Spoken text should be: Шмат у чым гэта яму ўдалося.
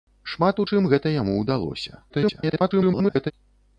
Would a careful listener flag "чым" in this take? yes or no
no